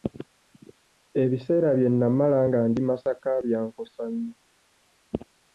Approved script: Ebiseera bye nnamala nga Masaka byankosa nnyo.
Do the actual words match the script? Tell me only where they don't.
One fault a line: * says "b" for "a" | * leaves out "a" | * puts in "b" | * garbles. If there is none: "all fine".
* puts in "ndi"